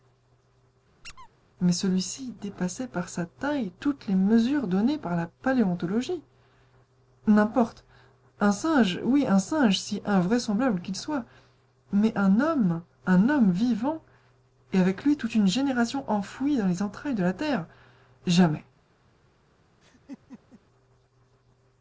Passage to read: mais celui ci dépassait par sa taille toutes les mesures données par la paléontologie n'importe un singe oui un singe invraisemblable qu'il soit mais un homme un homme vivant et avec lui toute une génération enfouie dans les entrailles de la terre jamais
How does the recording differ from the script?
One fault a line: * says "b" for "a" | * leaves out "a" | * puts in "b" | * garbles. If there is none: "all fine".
* puts in "si"